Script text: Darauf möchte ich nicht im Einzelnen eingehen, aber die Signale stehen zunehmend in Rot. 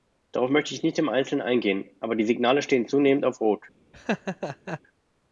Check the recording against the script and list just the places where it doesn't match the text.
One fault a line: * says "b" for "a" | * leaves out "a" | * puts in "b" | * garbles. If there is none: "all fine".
* says "auf" for "in"